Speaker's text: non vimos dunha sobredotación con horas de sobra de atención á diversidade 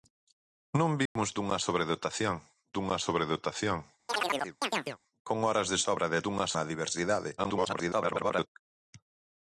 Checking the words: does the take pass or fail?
fail